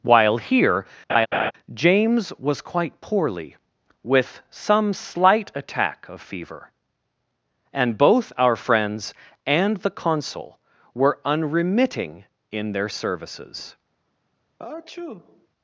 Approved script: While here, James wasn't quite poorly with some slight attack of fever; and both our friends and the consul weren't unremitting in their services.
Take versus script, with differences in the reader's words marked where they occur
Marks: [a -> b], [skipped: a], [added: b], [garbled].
While here, James [wasn't -> was] quite poorly with some slight attack of fever; and both our friends and the consul [weren't -> were] unremitting in their services.